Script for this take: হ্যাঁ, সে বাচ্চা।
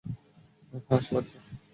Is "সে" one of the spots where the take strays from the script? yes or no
no